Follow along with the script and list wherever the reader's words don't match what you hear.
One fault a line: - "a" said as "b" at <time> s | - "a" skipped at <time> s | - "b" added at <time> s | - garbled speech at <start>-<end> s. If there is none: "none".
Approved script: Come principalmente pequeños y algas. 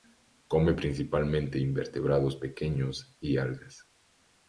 - "invertebrados" added at 1.6 s